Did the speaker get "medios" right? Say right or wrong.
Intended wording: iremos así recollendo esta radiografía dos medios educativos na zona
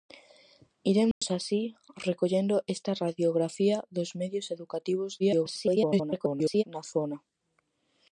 right